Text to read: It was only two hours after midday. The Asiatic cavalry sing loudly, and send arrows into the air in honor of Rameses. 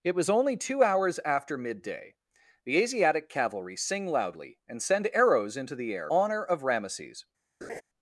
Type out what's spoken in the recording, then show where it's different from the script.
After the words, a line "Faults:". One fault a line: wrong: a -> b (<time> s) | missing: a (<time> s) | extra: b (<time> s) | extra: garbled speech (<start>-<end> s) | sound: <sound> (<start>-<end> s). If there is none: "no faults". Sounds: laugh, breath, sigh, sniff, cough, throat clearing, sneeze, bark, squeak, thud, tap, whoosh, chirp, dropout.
It was only two hours after midday. The Asiatic cavalry sing loudly, and send arrows into the air honor of Rameses.
Faults:
missing: in (6.1 s)
sound: laugh (7.6-7.8 s)